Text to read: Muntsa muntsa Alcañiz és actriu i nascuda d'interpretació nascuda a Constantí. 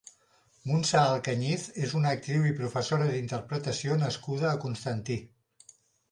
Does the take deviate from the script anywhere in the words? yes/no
yes